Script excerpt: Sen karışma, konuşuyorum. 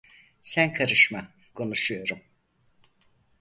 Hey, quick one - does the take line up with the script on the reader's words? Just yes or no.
yes